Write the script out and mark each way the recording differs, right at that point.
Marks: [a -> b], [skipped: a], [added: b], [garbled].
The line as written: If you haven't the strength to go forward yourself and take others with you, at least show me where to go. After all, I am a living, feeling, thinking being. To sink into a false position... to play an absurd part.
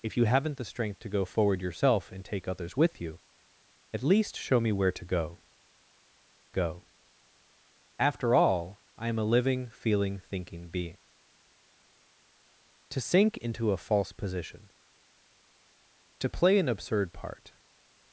If you haven't the strength to go forward yourself and take others with you, at least show me where to go. [added: go] After all, I am a living, feeling, thinking being. To sink into a false position... to play an absurd part.